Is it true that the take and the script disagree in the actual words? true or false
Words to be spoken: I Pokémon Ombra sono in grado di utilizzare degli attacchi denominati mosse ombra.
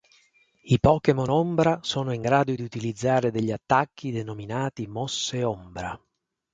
false